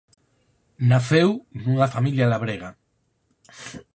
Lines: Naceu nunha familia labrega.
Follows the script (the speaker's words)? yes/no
yes